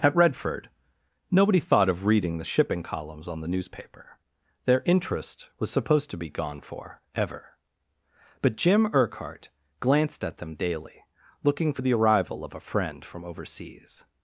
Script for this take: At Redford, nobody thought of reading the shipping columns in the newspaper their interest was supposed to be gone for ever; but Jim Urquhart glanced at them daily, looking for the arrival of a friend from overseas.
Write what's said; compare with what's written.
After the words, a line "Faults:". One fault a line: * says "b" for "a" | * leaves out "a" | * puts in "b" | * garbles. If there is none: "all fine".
At Redford, nobody thought of reading the shipping columns on the newspaper their interest was supposed to be gone for ever; but Jim Urquhart glanced at them daily, looking for the arrival of a friend from overseas.
Faults:
* says "on" for "in"